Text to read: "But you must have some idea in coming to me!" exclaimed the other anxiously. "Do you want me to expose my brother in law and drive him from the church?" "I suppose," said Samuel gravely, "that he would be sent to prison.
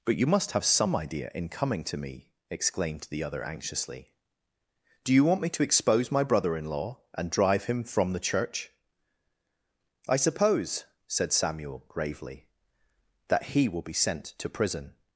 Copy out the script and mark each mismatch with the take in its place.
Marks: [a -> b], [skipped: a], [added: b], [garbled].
"But you must have some idea in coming to me!" exclaimed the other anxiously. "Do you want me to expose my brother in law and drive him from the church?" "I suppose," said Samuel gravely, "that he [would -> will] be sent to prison.